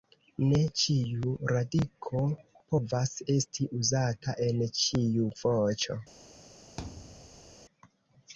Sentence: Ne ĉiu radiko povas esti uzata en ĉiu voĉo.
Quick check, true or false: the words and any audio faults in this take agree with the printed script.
false